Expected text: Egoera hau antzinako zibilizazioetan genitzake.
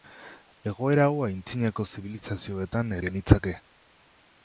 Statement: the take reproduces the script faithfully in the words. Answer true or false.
true